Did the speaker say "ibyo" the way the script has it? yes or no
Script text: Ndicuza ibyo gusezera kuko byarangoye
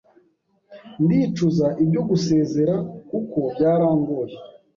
yes